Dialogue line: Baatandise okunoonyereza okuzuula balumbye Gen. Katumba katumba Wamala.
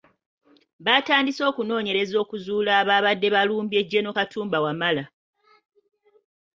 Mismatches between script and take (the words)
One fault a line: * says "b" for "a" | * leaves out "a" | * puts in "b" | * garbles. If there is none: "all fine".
* puts in "abaabadde"
* leaves out "katumba"